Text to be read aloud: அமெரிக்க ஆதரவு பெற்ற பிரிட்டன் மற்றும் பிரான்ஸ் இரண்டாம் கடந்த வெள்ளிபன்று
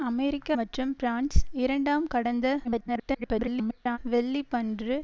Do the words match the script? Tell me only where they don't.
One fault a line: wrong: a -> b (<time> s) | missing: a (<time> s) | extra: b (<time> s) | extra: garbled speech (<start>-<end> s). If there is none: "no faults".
missing: ஆதரவு பெற்ற பிரிட்டன் (0.5 s)
extra: garbled speech (2.6-4.0 s)